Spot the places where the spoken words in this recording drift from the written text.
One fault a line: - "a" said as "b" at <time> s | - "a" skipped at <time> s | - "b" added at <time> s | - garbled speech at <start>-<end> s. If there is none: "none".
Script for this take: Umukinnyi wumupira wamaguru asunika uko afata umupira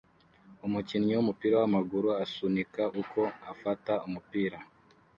none